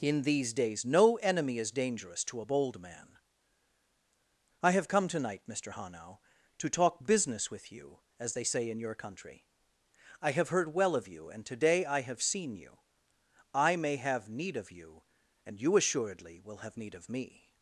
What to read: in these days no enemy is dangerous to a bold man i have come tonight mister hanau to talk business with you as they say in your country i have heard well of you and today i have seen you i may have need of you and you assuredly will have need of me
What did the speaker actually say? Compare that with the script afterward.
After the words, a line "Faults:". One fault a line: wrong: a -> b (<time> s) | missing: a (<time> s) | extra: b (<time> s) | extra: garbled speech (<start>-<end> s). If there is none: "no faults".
in these days no enemy is dangerous to a bold man i have come tonight mister hanau to talk business with you as they say in your country i have heard well of you and today i have seen you i may have need of you and you assuredly will have need of me
Faults:
no faults